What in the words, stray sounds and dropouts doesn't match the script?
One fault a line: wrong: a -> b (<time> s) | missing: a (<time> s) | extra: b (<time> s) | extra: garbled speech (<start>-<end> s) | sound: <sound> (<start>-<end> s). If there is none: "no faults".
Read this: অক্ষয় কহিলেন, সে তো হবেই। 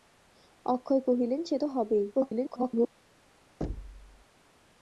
extra: garbled speech (2.1-2.9 s)
sound: thud (3.6-4.3 s)